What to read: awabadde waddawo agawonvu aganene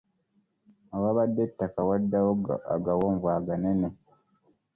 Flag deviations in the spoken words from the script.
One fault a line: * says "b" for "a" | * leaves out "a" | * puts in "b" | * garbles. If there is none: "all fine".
* puts in "ettaka"